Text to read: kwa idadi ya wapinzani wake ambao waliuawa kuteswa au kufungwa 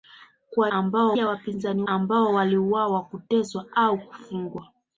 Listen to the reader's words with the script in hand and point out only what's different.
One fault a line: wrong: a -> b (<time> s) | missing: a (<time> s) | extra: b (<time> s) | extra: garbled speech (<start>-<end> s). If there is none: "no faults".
wrong: idadi -> ambao (0.7 s)
missing: wake (1.8 s)